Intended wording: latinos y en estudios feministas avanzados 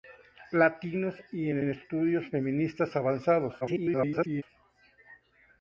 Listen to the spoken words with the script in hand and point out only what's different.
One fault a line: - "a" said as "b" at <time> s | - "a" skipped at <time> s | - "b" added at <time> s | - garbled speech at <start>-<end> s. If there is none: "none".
- "en" added at 1.6 s
- garbled speech at 3.6-4.4 s